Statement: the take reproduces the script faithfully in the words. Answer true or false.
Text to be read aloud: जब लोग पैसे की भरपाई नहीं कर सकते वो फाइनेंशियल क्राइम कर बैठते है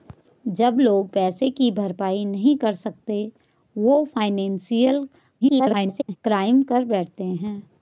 false